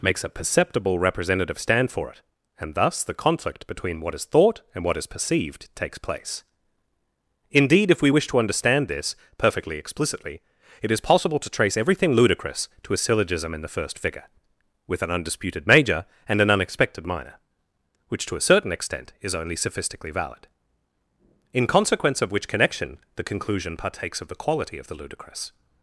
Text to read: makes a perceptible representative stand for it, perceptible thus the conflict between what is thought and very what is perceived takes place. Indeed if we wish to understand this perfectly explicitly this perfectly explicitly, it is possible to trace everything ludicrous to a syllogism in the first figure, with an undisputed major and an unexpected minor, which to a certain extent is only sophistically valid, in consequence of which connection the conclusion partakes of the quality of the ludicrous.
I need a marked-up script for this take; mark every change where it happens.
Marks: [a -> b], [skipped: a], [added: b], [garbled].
makes a perceptible representative stand for it, [perceptible -> and] thus the conflict between what is thought and [skipped: very] what is perceived takes place. Indeed if we wish to understand this perfectly explicitly [skipped: this perfectly explicitly,] it is possible to trace everything ludicrous to a syllogism in the first figure, with an undisputed major and an unexpected minor, which to a certain extent is only sophistically valid, in consequence of which connection the conclusion partakes of the quality of the ludicrous.